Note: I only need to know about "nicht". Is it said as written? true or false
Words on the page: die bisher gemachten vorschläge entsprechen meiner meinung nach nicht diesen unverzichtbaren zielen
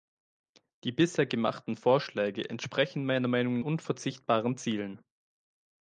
false